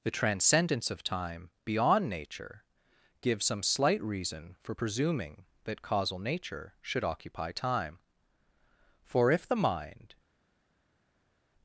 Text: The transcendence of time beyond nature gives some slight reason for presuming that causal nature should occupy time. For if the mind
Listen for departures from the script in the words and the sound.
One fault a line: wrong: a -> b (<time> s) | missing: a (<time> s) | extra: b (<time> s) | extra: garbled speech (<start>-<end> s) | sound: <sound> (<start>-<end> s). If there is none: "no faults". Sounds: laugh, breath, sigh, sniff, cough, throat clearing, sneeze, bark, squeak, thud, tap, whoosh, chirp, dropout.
no faults